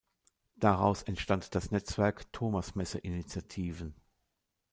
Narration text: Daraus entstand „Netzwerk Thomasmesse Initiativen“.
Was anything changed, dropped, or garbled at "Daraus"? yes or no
no